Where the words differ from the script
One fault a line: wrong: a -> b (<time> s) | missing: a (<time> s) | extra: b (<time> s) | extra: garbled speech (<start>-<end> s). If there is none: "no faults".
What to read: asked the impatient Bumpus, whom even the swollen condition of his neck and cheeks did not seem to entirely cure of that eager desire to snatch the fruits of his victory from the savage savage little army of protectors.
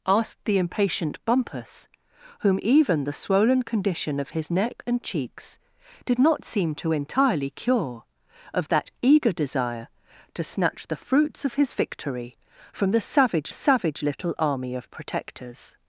no faults